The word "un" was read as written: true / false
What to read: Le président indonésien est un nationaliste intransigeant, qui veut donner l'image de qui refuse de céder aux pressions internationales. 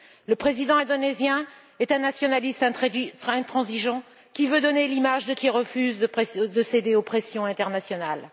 true